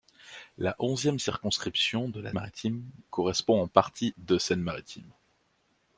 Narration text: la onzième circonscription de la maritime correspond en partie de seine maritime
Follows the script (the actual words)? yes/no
yes